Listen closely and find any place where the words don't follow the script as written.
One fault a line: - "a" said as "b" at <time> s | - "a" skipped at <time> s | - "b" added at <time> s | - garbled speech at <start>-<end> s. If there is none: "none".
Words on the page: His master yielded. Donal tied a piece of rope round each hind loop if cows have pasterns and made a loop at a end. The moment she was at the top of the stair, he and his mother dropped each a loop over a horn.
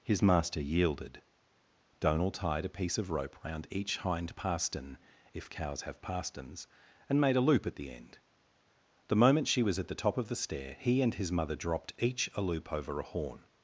- "loop" said as "pastern" at 4.3 s
- "a" said as "the" at 7.8 s